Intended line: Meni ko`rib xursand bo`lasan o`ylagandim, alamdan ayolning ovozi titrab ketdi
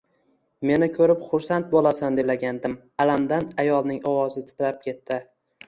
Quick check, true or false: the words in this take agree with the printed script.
true